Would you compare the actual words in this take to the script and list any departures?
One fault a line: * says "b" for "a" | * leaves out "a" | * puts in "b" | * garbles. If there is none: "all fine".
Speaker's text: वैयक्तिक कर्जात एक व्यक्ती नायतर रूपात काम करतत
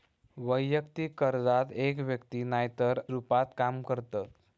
all fine